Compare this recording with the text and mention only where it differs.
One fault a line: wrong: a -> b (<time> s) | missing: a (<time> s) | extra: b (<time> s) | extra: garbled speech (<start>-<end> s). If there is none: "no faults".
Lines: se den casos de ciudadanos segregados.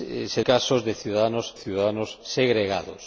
missing: den (0.4 s)
extra: ciudadanos (1.5 s)